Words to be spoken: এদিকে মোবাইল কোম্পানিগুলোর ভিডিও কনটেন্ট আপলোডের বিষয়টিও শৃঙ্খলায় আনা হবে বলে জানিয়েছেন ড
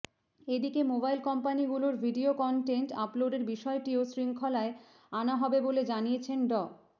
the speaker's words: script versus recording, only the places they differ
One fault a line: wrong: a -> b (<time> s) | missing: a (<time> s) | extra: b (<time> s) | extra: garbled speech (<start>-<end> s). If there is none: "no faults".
no faults